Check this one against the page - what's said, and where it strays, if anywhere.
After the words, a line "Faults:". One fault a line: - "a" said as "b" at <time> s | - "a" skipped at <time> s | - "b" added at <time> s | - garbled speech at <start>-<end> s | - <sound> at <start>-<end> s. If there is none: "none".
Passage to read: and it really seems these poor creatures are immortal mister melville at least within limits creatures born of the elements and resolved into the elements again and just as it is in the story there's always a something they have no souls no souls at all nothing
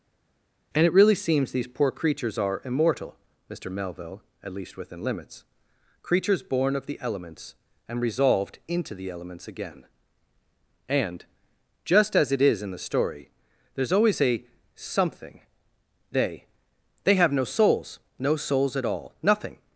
and it really seems these poor creatures are immortal mister melville at least within limits creatures born of the elements and resolved into the elements again and just as it is in the story there's always a something they they have no souls no souls at all nothing
Faults:
- "they" added at 17.0 s